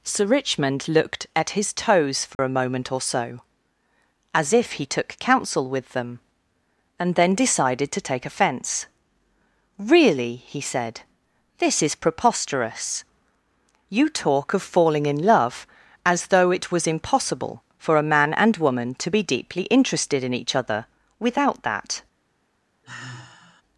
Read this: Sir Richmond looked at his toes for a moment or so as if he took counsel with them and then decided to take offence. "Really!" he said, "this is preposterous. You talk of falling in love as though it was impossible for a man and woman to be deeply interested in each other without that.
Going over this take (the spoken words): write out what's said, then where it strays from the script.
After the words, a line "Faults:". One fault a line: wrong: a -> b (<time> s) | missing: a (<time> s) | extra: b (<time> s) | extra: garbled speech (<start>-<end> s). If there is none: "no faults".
Sir Richmond looked at his toes for a moment or so as if he took counsel with them and then decided to take offence. "Really!" he said, "this is preposterous. You talk of falling in love as though it was impossible for a man and woman to be deeply interested in each other without that.
Faults:
no faults